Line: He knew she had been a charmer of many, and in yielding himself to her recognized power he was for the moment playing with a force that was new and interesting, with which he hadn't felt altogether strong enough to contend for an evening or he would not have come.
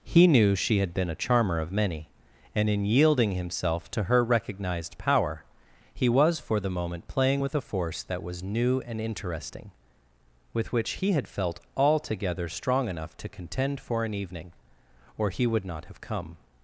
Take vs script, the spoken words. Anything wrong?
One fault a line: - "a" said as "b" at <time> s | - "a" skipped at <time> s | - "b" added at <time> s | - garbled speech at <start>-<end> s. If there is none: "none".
- "hadn't" said as "had" at 11.1 s